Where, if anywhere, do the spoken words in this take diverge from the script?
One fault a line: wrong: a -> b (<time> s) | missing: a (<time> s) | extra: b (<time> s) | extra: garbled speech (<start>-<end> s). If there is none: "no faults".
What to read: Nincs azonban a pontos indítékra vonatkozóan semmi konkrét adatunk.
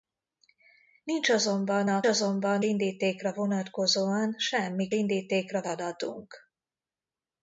wrong: pontos -> azonban (2.0 s)
wrong: konkrét -> indítékra (4.9 s)